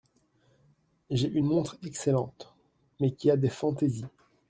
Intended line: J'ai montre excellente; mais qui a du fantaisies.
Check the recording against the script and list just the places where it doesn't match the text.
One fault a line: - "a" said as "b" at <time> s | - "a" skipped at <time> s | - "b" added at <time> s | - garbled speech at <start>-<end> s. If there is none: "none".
- "une" added at 1.3 s
- "du" said as "des" at 3.4 s